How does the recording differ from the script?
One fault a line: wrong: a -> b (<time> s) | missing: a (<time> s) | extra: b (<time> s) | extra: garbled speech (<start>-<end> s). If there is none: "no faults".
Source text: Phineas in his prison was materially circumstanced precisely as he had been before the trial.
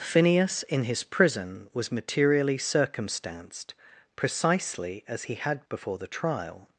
missing: been (5.7 s)